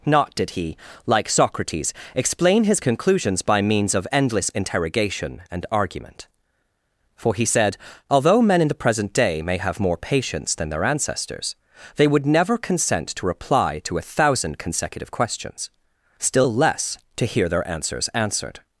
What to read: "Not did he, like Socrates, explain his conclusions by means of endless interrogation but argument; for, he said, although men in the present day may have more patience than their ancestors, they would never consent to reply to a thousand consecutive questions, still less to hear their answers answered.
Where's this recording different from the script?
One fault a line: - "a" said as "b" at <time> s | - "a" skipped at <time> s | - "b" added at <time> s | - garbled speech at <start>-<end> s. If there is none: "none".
- "but" said as "and" at 5.5 s